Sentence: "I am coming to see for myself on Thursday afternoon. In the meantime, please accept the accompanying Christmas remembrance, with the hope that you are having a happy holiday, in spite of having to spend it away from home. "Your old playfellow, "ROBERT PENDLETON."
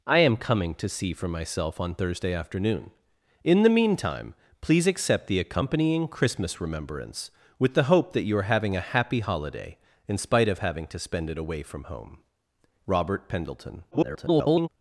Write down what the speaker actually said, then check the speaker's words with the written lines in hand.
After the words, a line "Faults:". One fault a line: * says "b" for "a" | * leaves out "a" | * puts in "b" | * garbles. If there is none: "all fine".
"I am coming to see for myself on Thursday afternoon. In the meantime, please accept the accompanying Christmas remembrance, with the hope that you are having a happy holiday, in spite of having to spend it away from home. ""ROBERT PENDLETON." [garbled]
Faults:
* leaves out "Your old playfellow"
* garbles